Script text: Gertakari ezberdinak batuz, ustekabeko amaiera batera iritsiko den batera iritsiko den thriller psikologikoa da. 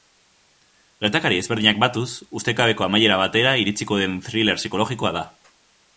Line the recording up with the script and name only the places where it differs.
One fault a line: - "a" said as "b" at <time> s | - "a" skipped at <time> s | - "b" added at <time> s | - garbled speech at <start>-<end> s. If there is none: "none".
- "batera iritsiko den" skipped at 4.2 s